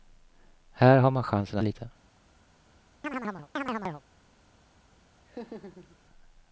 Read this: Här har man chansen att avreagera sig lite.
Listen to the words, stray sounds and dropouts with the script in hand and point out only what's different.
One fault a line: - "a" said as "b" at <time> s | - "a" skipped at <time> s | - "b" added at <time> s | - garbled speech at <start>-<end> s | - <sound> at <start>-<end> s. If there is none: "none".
- "att avreagera sig" skipped at 1.6 s
- chirp at 3.0-4.0 s
- laugh at 5.3-6.0 s